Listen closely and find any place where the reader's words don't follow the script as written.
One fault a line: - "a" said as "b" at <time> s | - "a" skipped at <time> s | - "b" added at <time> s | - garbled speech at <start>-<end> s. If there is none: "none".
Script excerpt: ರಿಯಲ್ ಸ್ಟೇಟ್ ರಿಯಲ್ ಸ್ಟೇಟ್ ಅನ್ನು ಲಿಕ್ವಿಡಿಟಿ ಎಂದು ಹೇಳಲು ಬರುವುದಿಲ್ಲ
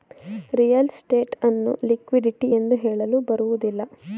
- "ರಿಯಲ್ ಸ್ಟೇಟ್" skipped at 1.4 s